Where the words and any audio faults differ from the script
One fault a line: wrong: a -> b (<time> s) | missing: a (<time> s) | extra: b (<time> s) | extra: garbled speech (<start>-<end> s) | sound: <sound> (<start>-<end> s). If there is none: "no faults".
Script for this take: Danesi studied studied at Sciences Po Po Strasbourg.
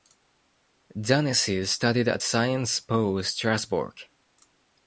missing: studied (2.1 s)
missing: Po (3.2 s)